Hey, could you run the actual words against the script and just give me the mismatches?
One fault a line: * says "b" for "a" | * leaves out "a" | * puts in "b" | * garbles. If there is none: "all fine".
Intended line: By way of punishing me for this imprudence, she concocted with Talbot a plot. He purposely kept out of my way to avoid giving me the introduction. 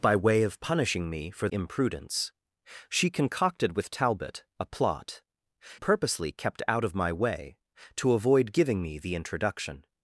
* leaves out "this"
* leaves out "He"